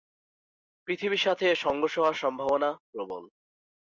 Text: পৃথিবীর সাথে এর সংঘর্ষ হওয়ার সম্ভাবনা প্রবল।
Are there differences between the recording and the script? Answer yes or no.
no